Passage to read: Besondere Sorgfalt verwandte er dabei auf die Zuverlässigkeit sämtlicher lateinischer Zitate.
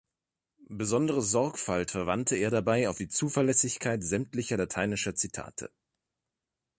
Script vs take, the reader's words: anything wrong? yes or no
no